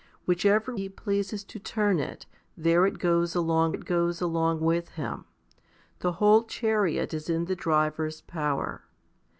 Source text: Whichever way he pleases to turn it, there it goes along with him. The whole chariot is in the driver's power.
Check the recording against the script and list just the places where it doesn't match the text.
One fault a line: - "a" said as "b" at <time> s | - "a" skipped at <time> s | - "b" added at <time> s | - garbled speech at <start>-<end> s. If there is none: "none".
- "way" skipped at 0.8 s
- "it goes along" added at 3.7 s